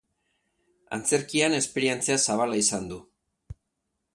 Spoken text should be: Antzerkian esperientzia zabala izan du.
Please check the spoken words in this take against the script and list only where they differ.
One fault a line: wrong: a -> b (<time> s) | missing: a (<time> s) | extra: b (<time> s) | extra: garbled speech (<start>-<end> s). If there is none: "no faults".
no faults